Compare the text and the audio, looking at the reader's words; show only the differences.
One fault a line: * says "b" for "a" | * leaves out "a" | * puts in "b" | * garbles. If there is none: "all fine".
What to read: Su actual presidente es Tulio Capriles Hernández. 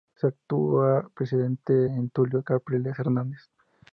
all fine